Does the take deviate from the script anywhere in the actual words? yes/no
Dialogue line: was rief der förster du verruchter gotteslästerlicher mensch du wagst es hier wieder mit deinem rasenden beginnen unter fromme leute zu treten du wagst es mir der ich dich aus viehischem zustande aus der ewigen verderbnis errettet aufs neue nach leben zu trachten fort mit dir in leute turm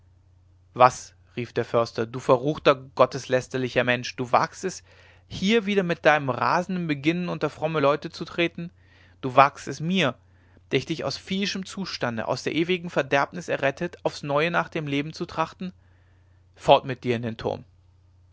yes